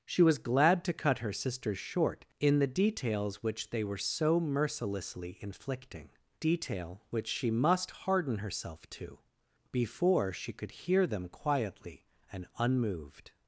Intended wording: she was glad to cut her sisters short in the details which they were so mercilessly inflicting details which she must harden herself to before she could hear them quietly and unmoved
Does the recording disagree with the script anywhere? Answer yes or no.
yes